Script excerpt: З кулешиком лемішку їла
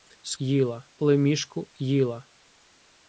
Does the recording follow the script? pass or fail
fail